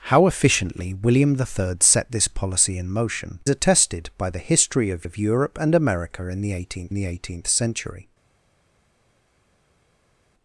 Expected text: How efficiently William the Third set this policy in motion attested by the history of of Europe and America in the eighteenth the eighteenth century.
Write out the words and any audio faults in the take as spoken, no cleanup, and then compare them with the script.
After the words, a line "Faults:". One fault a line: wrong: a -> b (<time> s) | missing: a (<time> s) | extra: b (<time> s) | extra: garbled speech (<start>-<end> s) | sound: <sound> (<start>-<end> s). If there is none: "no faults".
How efficiently William the Third set this policy in motion attested by the history of of Europe and America in the eighteenth the eighteenth century.
Faults:
no faults